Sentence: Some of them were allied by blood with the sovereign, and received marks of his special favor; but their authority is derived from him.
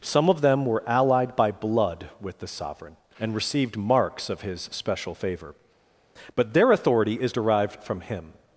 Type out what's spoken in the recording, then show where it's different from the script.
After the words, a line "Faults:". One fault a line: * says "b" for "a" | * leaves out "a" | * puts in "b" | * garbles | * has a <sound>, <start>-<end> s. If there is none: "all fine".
Some of them were allied by blood with the sovereign, and received marks of his special favor; but their authority is derived from him.
Faults:
all fine